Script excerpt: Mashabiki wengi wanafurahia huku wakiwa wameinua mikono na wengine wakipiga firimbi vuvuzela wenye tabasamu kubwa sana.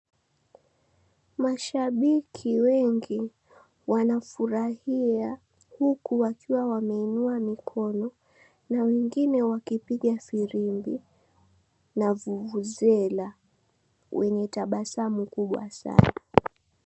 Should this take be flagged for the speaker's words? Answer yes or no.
yes